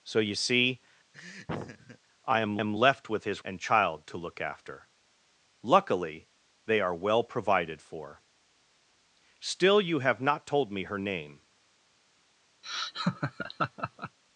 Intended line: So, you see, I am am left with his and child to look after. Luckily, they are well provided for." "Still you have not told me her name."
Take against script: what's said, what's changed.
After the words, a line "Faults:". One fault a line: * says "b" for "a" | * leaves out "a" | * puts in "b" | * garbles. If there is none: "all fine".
So, you see, I am am left with his and child to look after. Luckily, they are well provided for." "Still you have not told me her name."
Faults:
all fine